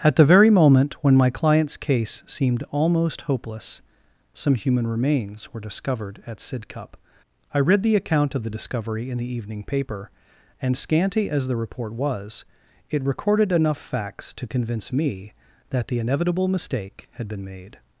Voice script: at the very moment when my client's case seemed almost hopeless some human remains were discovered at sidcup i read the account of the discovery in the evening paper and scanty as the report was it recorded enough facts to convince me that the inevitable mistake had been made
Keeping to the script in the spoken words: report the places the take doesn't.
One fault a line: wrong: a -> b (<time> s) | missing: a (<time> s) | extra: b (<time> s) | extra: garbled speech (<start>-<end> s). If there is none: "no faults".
no faults